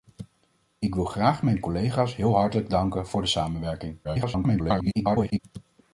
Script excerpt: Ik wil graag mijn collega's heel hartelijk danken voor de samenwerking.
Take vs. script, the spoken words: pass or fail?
fail